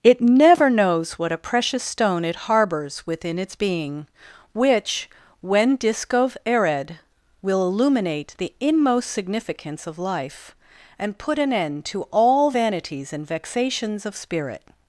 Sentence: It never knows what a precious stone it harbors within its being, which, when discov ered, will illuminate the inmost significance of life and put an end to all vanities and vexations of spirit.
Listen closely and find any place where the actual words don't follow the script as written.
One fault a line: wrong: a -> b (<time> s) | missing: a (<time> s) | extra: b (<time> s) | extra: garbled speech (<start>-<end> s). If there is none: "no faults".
no faults